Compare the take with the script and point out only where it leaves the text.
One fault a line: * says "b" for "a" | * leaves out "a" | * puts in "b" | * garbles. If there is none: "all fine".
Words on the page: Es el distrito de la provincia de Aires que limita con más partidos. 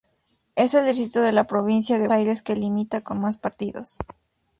all fine